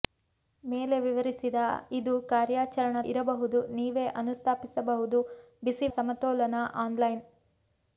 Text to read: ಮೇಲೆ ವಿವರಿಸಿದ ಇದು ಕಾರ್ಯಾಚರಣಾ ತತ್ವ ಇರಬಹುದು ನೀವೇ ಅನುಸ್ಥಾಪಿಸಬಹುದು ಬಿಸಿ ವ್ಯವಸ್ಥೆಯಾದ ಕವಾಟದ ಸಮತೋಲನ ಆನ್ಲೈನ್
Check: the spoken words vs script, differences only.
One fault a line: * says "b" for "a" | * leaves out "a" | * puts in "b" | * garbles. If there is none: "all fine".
* leaves out "ತತ್ವ"
* leaves out "ವ್ಯವಸ್ಥೆಯಾದ ಕವಾಟದ"